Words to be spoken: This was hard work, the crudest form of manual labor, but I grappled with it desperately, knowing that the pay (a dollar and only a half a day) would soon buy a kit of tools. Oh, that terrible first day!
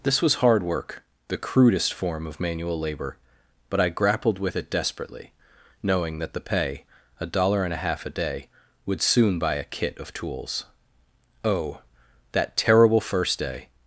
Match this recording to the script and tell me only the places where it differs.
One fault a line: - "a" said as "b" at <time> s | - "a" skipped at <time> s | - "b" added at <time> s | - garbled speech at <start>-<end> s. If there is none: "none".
- "only" skipped at 7.7 s